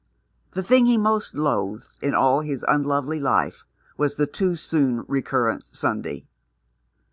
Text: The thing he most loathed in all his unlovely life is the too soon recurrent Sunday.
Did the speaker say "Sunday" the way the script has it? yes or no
yes